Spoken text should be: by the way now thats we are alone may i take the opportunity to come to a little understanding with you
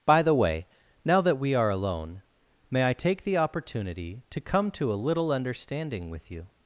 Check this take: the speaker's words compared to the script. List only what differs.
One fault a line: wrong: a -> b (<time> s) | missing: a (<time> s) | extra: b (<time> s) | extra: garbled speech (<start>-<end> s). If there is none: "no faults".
wrong: thats -> that (1.2 s)